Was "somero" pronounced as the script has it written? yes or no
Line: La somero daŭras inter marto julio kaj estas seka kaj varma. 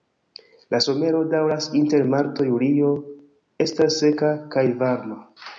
yes